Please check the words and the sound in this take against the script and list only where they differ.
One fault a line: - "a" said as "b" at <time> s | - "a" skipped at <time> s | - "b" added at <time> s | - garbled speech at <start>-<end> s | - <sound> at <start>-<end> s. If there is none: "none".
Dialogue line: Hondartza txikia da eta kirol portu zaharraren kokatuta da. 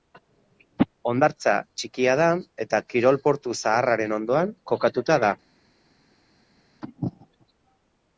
- "ondoan" added at 4.2 s